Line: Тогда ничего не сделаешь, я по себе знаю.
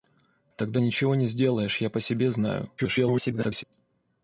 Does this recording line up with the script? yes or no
no